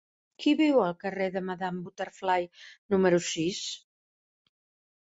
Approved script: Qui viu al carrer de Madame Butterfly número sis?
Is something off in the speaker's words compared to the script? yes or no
no